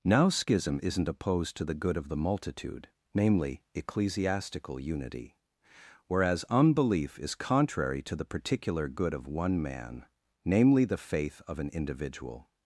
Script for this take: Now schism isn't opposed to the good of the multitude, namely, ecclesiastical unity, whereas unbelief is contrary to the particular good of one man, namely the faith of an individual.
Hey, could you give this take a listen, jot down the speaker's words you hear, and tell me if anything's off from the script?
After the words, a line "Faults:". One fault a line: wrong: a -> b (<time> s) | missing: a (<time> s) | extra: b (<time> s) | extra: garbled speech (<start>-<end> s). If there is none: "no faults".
Now schism isn't opposed to the good of the multitude, namely, ecclesiastical unity, whereas unbelief is contrary to the particular good of one man, namely the faith of an individual.
Faults:
no faults